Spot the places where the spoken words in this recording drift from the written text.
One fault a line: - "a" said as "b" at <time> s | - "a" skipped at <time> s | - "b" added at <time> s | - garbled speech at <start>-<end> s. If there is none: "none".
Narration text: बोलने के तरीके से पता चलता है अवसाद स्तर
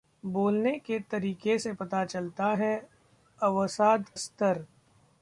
none